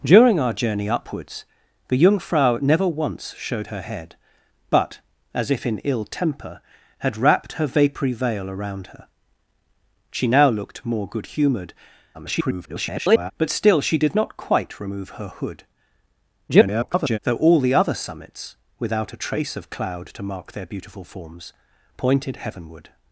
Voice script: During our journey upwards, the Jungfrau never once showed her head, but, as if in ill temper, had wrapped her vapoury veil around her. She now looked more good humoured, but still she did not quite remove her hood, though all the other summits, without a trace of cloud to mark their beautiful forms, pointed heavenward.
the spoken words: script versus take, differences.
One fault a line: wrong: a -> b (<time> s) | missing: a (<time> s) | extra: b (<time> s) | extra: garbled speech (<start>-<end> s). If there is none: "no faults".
extra: garbled speech (12.1-13.3 s)
extra: garbled speech (16.5-17.2 s)